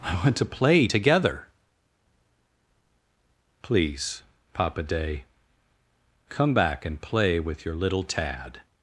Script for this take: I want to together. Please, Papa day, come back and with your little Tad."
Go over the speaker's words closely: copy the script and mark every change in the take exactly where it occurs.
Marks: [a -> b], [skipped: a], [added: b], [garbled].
I want to [added: play] together. Please, Papa day, come back and [added: play] with your little Tad."